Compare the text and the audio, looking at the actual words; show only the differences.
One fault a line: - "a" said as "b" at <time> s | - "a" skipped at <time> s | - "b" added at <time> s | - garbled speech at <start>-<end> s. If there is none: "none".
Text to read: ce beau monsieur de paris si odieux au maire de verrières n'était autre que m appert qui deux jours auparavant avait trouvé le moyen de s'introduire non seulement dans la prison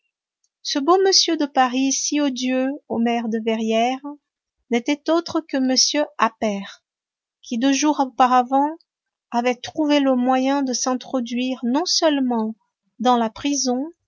none